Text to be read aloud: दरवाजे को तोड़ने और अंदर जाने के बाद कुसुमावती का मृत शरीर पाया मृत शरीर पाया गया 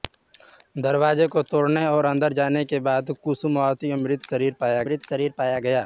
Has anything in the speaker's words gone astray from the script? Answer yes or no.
no